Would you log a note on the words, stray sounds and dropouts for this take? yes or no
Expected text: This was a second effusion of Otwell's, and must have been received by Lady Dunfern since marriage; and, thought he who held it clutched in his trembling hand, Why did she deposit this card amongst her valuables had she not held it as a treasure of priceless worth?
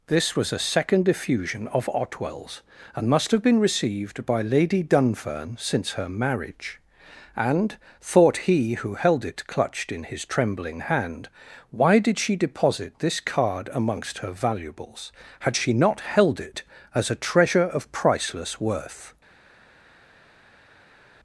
yes